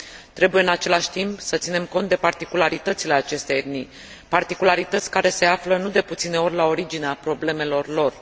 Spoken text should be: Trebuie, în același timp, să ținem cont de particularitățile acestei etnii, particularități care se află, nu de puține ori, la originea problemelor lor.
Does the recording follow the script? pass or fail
pass